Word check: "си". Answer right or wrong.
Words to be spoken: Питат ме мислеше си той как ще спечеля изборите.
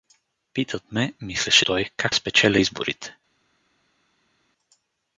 wrong